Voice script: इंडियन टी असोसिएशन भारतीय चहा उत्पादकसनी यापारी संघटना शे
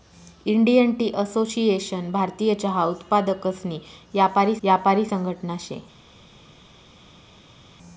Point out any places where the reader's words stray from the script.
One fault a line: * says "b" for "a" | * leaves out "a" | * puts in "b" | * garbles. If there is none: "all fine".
* puts in "यापारी"